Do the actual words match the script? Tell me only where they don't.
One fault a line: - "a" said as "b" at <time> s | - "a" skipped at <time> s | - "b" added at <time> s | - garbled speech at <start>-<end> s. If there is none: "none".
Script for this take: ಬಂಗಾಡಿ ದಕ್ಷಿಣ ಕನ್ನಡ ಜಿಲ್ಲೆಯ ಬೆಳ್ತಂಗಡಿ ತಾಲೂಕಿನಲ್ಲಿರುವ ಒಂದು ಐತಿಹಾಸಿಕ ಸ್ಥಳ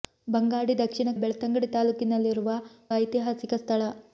- "ಕನ್ನಡ ಜಿಲ್ಲೆಯ" skipped at 1.1 s
- "ಒಂದು" skipped at 2.5 s